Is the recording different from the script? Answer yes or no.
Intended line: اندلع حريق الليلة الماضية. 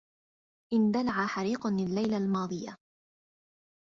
no